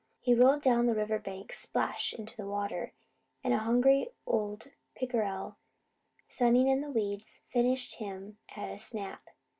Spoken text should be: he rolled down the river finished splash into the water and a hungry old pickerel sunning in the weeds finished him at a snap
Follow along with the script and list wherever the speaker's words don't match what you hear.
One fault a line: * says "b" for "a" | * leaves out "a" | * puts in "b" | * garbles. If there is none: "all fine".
* says "bank" for "finished"